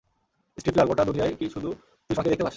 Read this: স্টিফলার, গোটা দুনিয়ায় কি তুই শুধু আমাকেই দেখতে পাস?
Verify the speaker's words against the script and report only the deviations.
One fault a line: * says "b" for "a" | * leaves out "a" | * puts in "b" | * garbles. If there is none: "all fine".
* leaves out "শুধু"